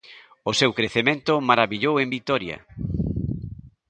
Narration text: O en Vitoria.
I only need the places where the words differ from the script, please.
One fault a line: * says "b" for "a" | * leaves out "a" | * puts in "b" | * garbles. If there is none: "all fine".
* puts in "seu crecemento marabillou"